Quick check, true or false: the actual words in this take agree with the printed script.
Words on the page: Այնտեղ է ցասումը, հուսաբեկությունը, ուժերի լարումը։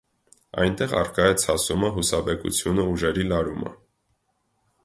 false